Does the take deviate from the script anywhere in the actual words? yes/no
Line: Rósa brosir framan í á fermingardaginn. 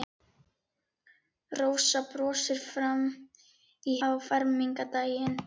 no